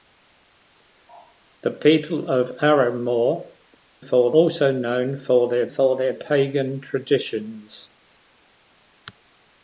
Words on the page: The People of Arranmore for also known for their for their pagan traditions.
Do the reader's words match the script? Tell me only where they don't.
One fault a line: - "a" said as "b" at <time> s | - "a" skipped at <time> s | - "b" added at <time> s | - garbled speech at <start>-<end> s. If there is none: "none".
none